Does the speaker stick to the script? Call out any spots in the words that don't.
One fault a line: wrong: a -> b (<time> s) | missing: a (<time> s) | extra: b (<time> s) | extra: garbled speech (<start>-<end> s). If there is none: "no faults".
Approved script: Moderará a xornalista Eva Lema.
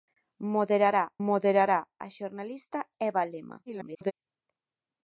extra: moderará (1.3 s)
extra: garbled speech (3.7-4.1 s)